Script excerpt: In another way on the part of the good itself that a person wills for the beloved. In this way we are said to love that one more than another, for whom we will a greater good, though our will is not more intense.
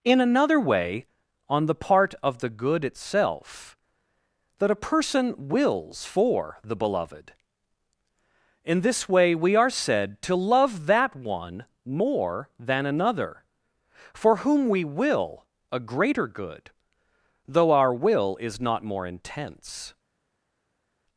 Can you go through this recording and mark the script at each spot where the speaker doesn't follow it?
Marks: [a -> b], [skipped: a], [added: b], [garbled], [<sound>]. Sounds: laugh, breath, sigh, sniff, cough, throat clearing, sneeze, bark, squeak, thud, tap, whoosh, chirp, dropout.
In another way on the part of the good itself that a person wills for the beloved. In this way we are said to love that one more than another, for whom we will a greater good, though our will is not more intense.